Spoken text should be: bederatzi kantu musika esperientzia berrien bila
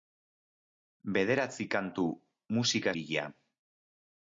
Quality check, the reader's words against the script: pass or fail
fail